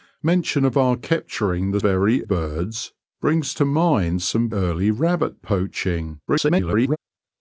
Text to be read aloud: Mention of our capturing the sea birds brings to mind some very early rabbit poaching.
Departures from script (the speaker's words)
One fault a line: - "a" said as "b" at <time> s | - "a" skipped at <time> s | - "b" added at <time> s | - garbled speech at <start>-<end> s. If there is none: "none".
- "sea" said as "very" at 1.8 s
- "very" skipped at 4.5 s
- garbled speech at 6.3-7.0 s